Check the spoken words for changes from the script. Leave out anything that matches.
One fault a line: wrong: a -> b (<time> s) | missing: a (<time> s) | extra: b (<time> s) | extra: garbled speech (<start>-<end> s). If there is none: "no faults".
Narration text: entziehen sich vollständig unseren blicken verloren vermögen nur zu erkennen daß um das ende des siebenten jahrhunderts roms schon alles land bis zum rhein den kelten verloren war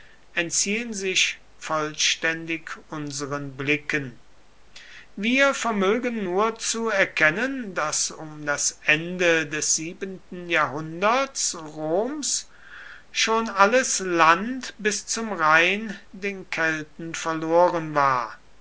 wrong: verloren -> wir (5.2 s)